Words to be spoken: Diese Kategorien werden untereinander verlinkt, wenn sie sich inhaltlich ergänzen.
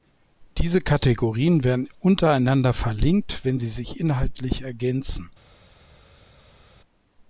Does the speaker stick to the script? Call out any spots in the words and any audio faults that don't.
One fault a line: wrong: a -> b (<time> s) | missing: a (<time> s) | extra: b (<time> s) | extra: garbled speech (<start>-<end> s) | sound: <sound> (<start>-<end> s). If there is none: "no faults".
no faults